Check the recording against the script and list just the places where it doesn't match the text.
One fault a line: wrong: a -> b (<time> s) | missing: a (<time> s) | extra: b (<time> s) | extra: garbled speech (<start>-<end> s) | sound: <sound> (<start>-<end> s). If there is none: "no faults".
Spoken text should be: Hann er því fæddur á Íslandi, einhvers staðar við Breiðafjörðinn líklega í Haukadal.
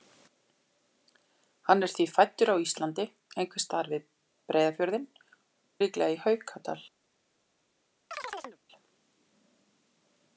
sound: chirp (8.1-8.6 s)